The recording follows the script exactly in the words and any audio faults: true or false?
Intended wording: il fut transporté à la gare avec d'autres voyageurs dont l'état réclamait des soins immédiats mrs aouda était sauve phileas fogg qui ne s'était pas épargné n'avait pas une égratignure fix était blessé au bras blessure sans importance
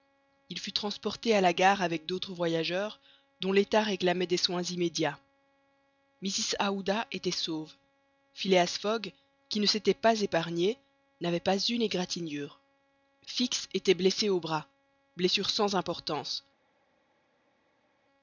true